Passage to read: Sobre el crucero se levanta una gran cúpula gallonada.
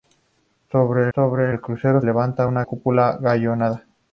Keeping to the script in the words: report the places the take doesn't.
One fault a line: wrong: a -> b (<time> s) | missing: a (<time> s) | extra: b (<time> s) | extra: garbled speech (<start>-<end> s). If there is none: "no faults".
extra: sobre (1.1 s)
missing: se (2.0 s)
missing: gran (2.6 s)